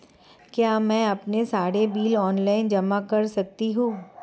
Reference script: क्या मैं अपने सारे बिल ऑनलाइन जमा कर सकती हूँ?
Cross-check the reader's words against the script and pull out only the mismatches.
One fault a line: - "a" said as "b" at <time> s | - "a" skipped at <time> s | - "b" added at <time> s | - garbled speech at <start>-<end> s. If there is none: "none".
none